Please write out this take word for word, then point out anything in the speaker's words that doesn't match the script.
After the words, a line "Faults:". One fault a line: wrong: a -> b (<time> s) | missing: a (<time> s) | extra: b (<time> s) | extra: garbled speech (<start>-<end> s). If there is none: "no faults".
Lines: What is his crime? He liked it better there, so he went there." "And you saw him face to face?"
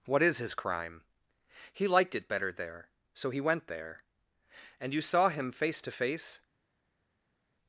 What is his crime? He liked it better there, so he went there." "And you saw him face to face?"
Faults:
no faults